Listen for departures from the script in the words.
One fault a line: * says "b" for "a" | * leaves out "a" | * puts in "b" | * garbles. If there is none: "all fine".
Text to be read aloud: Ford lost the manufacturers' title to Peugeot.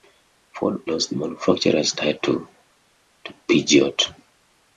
all fine